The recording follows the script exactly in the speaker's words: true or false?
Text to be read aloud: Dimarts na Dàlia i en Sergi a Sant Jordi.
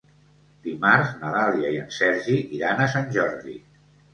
false